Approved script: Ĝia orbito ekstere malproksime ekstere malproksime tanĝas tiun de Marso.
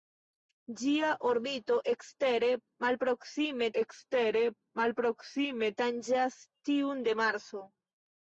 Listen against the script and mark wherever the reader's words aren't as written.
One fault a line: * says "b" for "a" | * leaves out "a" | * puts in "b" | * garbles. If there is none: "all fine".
all fine